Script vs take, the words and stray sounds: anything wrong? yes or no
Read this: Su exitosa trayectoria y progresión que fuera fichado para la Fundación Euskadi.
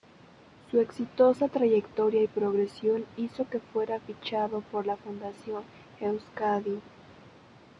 yes